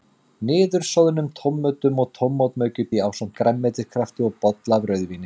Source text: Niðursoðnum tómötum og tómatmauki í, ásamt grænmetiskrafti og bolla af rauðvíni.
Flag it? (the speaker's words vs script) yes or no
no